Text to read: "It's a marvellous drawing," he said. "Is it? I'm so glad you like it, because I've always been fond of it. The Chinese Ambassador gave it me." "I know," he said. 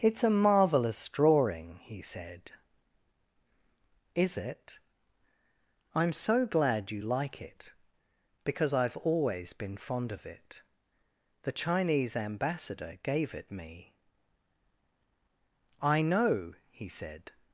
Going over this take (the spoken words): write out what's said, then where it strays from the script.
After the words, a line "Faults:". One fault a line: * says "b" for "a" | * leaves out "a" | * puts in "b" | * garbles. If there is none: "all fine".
"It's a marvellous drawing," he said. "Is it? I'm so glad you like it, because I've always been fond of it. The Chinese Ambassador gave it me." "I know," he said.
Faults:
all fine